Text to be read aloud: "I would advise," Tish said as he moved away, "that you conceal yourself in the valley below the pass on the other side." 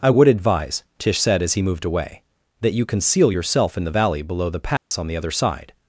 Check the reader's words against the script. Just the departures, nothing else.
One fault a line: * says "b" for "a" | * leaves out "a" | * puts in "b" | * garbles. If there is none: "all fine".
all fine